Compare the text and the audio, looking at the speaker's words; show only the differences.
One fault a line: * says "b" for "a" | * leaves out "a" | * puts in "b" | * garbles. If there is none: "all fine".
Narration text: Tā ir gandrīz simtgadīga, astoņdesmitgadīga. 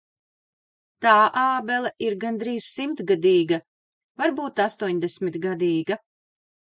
* puts in "ābele"
* puts in "varbūt"